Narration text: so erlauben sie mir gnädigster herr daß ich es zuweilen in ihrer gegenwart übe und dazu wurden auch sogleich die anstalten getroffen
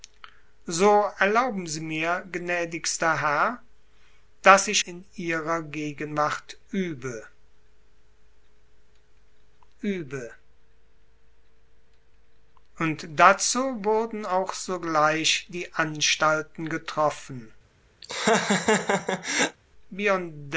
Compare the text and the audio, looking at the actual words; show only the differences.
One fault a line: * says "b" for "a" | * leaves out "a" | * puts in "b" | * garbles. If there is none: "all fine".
* leaves out "es zuweilen"
* puts in "übe"